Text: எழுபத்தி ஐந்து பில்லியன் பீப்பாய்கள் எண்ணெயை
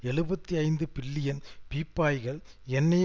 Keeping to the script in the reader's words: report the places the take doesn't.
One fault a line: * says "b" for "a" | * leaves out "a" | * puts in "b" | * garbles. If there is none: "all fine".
all fine